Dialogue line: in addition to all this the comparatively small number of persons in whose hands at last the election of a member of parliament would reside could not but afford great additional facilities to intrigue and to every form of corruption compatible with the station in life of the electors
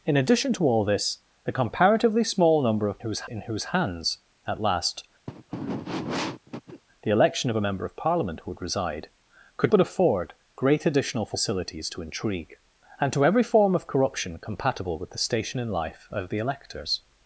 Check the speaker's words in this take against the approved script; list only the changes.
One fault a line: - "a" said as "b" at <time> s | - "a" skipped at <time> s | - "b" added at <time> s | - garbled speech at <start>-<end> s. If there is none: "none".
- "persons" said as "whose" at 3.0 s
- "not" skipped at 9.7 s